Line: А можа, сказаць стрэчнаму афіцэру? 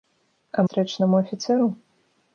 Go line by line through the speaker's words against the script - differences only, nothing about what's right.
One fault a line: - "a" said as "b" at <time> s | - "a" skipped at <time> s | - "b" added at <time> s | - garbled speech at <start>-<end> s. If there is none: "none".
- "можа сказаць" skipped at 0.6 s